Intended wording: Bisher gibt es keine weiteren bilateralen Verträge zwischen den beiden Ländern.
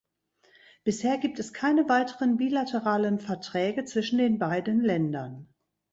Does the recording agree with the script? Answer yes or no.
yes